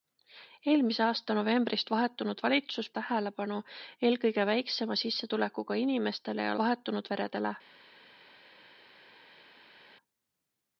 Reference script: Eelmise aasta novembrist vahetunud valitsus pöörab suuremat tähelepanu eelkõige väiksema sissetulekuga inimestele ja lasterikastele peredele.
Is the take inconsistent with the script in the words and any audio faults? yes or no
yes